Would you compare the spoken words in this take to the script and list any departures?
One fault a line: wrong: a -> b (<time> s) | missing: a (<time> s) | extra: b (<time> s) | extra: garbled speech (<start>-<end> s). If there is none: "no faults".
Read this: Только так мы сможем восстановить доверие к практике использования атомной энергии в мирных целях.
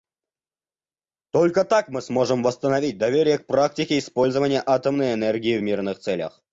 no faults